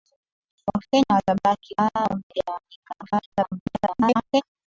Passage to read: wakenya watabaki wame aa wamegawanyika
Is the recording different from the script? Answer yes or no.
yes